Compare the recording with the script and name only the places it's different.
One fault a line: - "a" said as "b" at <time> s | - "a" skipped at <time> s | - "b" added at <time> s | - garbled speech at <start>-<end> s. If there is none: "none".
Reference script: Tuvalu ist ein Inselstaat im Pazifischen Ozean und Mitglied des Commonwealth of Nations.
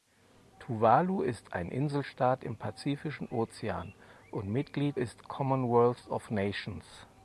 - "des" said as "ist" at 4.9 s